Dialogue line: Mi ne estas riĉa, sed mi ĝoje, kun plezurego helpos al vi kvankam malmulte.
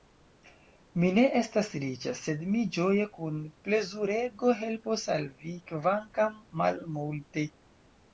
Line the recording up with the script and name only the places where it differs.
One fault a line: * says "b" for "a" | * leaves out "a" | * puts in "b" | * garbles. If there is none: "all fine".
all fine